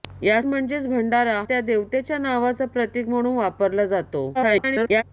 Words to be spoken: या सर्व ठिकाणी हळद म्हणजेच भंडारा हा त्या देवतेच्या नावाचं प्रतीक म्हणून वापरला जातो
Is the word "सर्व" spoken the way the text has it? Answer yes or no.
no